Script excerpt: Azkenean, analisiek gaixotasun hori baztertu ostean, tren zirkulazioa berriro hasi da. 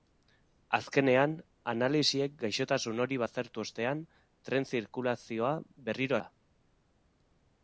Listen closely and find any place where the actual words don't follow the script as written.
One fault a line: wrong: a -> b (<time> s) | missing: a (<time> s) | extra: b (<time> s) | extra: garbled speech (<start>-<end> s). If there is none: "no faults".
missing: hasi (6.2 s)